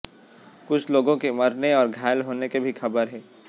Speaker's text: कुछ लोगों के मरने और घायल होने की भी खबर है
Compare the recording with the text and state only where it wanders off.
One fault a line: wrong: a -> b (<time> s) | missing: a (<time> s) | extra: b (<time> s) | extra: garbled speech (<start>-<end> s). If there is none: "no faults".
no faults